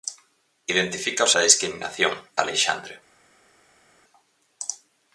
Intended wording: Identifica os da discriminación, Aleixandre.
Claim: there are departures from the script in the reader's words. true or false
false